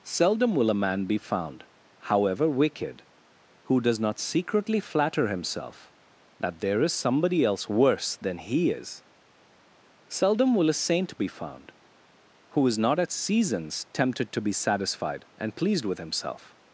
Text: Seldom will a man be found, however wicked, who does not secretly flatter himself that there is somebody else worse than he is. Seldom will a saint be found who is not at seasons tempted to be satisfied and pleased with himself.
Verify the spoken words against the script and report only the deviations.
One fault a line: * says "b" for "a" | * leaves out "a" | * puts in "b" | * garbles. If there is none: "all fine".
all fine